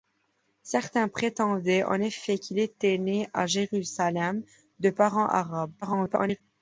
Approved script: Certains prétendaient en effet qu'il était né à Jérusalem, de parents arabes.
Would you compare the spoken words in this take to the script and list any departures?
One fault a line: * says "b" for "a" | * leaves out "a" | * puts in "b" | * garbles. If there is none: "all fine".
* garbles